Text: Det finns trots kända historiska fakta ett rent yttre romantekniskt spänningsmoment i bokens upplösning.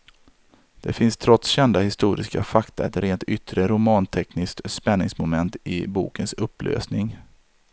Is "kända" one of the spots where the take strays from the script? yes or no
no